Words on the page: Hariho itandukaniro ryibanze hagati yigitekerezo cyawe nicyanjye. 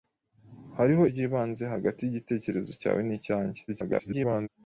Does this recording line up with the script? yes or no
no